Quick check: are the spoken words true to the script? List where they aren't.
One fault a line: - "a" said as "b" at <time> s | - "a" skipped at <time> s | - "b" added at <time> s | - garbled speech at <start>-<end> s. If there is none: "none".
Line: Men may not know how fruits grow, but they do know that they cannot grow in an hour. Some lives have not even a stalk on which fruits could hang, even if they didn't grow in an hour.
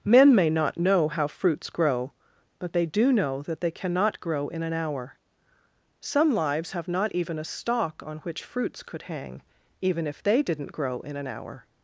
none